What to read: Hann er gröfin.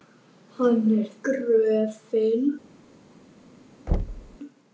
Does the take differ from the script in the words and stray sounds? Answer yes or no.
yes